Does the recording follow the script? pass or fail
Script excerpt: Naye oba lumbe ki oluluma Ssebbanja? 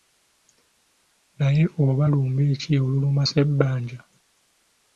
pass